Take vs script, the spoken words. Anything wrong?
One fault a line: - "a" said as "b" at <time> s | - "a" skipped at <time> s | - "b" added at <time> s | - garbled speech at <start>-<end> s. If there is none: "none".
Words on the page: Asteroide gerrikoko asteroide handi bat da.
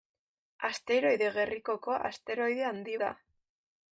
- "bat" skipped at 3.0 s